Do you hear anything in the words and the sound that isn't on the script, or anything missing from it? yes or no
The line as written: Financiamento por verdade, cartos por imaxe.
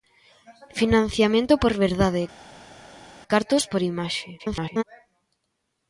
yes